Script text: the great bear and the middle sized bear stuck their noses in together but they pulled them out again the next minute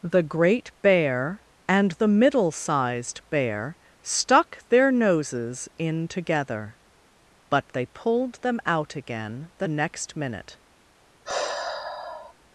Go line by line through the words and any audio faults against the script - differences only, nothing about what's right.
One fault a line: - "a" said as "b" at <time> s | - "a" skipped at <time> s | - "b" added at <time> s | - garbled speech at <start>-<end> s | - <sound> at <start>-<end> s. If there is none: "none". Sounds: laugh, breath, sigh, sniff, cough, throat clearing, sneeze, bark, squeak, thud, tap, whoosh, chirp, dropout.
- sigh at 11.2-12.3 s